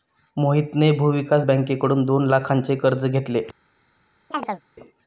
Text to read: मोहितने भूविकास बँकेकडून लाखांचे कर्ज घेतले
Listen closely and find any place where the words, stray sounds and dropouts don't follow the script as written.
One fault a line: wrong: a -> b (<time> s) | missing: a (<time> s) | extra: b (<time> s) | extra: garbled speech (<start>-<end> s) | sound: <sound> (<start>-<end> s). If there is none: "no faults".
extra: दोन (2.0 s)
sound: chirp (4.3-4.6 s)